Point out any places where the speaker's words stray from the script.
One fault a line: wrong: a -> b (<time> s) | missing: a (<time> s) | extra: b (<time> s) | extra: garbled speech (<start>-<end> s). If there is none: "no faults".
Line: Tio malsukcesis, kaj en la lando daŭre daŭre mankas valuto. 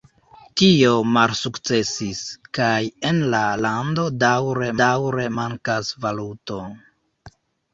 no faults